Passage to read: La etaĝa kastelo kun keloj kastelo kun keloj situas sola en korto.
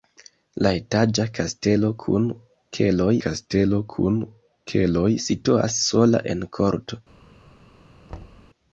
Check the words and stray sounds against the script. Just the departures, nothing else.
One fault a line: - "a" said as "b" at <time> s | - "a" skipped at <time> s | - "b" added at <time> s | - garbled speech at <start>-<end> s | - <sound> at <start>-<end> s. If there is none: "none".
- thud at 8.1-8.5 s